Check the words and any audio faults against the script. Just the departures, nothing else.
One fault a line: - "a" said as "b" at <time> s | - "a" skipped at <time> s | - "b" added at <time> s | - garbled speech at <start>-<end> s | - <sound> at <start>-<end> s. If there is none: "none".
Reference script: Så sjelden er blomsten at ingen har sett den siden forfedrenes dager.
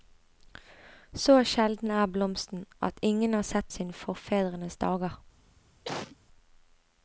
- "den" skipped at 3.7 s
- cough at 5.8-6.2 s